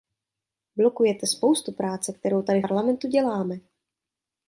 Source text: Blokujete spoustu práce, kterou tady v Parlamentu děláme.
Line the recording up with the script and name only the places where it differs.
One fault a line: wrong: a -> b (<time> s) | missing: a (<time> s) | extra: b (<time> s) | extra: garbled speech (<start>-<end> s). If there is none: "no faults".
missing: v (2.6 s)